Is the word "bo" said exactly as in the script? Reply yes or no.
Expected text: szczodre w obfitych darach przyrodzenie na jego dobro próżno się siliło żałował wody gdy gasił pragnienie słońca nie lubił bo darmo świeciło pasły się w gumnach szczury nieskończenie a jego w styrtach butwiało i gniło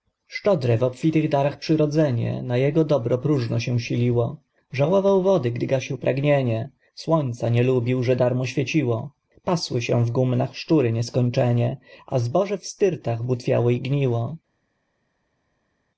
no